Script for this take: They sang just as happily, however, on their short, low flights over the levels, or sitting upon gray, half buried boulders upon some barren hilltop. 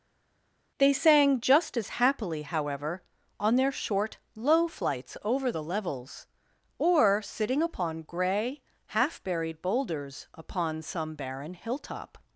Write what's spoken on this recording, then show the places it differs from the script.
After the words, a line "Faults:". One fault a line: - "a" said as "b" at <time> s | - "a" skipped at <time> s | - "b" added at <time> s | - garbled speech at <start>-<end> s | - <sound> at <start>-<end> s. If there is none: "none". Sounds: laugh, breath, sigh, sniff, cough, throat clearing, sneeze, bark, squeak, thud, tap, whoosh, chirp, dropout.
They sang just as happily, however, on their short, low flights over the levels, or sitting upon gray, half buried boulders upon some barren hilltop.
Faults:
none